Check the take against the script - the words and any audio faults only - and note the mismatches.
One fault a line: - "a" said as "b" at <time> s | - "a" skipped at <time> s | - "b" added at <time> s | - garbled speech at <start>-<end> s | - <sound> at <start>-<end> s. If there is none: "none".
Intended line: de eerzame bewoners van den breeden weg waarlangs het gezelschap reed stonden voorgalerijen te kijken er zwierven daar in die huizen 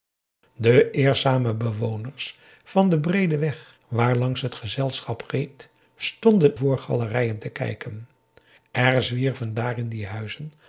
none